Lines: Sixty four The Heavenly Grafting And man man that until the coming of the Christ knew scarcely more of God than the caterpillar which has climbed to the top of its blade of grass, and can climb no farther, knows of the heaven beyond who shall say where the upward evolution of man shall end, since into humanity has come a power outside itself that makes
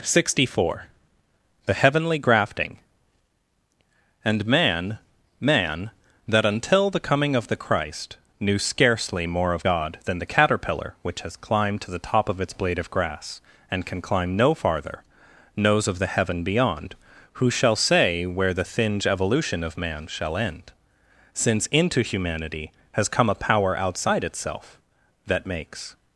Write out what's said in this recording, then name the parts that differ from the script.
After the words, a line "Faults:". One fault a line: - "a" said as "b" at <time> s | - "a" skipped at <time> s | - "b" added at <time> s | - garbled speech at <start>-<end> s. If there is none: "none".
Sixty four The Heavenly Grafting And man man that until the coming of the Christ knew scarcely more of God than the caterpillar which has climbed to the top of its blade of grass, and can climb no farther, knows of the heaven beyond who shall say where the thinge evolution of man shall end, since into humanity has come a power outside itself that makes
Faults:
- "upward" said as "thinge" at 18.6 s